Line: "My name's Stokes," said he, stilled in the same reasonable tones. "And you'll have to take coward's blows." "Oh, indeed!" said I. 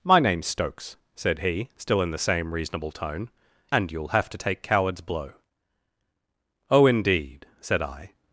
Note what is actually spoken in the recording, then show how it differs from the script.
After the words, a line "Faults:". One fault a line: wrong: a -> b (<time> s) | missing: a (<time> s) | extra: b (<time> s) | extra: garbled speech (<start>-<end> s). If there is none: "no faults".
"My name's Stokes," said he, still in the same reasonable tone. "And you'll have to take coward's blow." "Oh, indeed!" said I.
Faults:
wrong: stilled -> still (1.8 s)
wrong: tones -> tone (2.9 s)
wrong: blows -> blow (5.0 s)